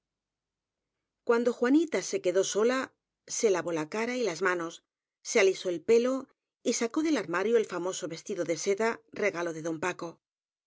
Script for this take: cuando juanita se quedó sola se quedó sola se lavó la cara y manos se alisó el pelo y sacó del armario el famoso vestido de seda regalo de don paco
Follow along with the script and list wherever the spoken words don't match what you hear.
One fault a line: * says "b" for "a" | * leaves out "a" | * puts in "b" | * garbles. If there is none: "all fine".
* leaves out "quedó sola se"
* puts in "las"